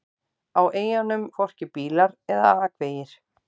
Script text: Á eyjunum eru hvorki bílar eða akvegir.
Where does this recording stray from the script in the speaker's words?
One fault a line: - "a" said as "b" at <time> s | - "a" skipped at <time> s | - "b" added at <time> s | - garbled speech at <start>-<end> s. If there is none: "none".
- "eru" skipped at 1.3 s